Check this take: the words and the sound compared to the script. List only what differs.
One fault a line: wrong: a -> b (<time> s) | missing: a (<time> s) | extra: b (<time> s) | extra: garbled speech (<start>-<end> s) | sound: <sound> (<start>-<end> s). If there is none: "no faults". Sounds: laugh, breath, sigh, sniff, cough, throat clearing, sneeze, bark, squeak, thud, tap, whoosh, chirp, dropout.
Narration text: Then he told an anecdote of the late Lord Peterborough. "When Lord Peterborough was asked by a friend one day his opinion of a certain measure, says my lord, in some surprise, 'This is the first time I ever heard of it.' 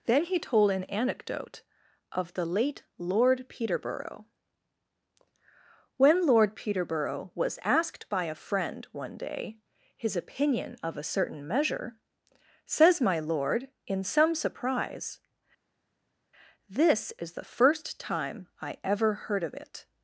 no faults